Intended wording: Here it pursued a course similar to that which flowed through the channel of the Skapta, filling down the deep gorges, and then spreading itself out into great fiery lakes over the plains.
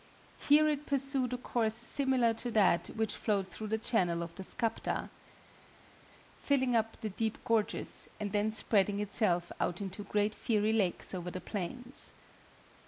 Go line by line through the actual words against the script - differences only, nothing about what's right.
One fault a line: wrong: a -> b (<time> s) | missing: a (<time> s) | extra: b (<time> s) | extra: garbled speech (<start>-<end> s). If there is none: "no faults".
wrong: down -> up (6.7 s)